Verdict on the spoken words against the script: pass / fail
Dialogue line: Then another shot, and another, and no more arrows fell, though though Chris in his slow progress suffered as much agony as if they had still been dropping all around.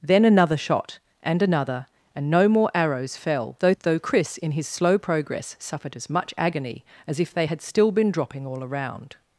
pass